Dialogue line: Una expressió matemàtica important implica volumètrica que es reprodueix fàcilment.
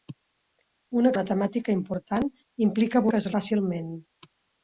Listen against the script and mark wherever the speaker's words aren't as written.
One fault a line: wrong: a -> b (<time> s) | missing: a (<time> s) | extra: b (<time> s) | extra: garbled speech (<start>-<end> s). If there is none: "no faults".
missing: expressió (1.1 s)
missing: volumètrica (3.0 s)
missing: reprodueix (3.3 s)